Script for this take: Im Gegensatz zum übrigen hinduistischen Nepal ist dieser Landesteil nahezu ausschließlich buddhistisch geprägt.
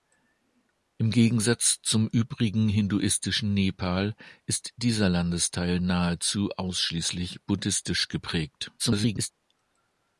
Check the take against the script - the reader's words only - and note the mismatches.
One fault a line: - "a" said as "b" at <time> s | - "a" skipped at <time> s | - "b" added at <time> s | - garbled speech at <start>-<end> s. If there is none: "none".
- garbled speech at 8.8-9.3 s